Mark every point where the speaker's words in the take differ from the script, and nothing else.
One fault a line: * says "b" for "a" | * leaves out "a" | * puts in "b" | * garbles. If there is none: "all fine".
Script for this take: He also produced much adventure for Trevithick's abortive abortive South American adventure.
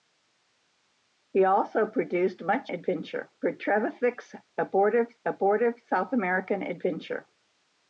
all fine